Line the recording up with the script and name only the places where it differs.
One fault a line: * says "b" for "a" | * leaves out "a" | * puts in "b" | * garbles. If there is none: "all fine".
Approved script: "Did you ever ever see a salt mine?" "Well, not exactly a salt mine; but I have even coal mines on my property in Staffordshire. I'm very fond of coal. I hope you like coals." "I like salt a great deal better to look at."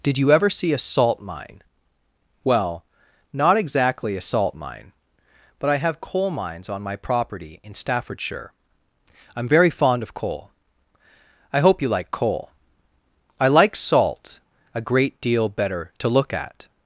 * leaves out "ever"
* leaves out "even"
* says "coal" for "coals"